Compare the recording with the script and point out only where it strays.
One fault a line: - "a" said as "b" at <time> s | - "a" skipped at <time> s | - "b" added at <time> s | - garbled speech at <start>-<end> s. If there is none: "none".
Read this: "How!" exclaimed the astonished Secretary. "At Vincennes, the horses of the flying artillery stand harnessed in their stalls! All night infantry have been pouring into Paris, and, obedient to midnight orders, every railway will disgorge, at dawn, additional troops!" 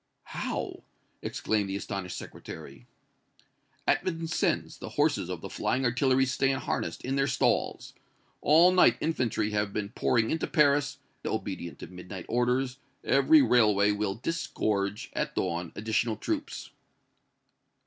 - "and" skipped at 11.0 s